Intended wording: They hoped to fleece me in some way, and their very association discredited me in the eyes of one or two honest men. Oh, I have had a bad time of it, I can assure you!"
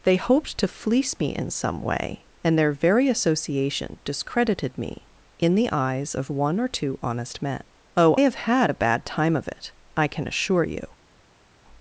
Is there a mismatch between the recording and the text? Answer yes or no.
yes